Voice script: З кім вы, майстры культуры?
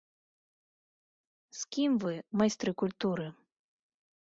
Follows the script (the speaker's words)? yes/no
yes